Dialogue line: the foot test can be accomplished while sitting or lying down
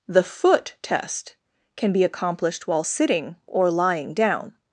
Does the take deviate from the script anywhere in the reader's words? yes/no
no